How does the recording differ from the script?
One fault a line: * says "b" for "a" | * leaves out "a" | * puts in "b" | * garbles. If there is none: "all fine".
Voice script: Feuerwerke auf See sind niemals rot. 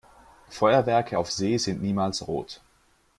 all fine